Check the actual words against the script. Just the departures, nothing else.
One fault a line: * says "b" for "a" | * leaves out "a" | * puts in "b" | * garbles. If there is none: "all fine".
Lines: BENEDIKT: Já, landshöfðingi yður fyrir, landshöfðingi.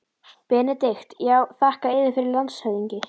* says "þakka" for "landshöfðingi"